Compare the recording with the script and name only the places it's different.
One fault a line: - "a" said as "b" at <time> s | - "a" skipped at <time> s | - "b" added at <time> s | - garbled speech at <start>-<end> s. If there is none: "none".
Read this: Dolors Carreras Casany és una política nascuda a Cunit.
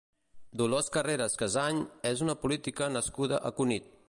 none